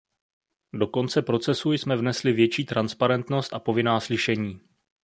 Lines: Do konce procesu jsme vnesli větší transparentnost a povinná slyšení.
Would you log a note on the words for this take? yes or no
no